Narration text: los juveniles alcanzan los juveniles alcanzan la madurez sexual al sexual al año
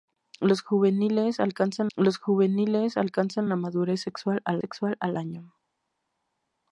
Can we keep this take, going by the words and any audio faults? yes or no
yes